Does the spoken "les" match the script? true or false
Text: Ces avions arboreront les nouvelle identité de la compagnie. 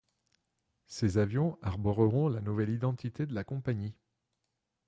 false